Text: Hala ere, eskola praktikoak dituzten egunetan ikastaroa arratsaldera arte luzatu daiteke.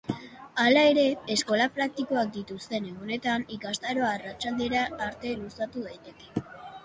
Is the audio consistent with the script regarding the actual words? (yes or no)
yes